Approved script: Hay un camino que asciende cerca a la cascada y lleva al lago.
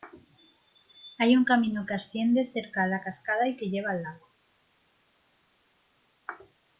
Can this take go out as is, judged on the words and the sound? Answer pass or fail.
fail